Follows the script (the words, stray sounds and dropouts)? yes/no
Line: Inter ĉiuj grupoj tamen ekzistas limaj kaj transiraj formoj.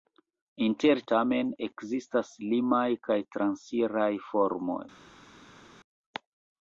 no